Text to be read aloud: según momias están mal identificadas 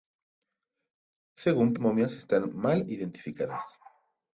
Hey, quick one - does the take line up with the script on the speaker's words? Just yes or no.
yes